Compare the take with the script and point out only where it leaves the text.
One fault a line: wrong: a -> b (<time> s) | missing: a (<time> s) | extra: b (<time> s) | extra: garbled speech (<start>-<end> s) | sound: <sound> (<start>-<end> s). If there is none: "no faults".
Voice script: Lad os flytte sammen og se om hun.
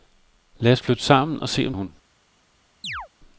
sound: chirp (2.8-3.1 s)